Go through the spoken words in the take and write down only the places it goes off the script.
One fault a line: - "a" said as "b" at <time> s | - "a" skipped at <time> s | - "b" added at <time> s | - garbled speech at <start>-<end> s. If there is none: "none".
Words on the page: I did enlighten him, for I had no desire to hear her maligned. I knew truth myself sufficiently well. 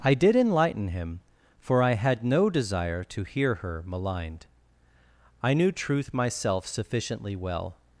none